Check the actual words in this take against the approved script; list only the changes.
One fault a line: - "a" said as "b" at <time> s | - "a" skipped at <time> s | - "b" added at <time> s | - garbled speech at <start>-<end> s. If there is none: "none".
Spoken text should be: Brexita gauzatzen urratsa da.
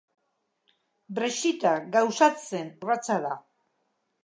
none